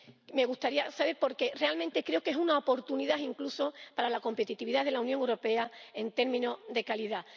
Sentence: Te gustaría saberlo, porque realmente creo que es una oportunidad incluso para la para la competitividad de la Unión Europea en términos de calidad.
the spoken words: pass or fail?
fail